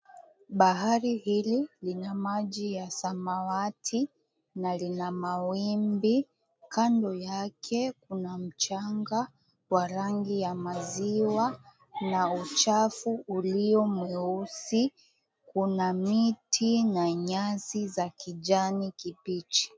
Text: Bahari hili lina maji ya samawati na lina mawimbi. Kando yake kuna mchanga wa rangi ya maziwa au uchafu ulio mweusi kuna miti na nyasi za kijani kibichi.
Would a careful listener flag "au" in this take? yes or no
yes